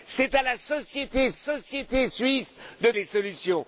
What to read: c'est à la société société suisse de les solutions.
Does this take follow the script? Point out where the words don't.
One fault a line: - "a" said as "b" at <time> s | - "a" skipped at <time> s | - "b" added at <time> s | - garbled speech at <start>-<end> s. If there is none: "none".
none